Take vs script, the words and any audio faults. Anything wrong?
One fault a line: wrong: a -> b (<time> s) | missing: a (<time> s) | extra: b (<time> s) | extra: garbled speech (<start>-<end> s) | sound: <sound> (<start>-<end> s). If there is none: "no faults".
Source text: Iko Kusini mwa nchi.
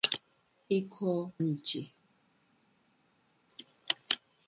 missing: Kusini mwa (1.3 s)